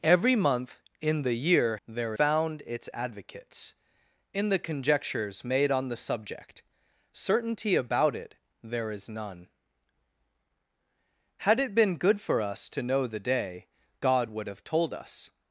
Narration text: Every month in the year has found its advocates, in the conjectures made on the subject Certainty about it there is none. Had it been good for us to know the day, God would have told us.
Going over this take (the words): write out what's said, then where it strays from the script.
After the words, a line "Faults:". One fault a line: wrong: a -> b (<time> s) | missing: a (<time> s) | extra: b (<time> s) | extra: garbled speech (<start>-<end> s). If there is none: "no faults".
Every month in the year there found its advocates, in the conjectures made on the subject Certainty about it there is none. Had it been good for us to know the day, God would have told us.
Faults:
wrong: has -> there (1.9 s)